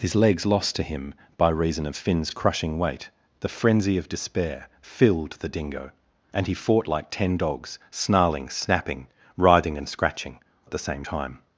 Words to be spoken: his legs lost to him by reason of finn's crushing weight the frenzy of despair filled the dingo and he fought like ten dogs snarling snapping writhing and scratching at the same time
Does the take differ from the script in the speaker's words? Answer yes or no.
no